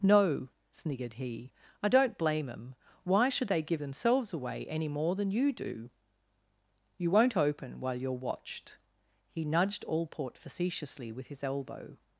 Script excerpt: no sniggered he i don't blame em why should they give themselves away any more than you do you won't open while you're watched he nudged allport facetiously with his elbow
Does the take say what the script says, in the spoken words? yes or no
yes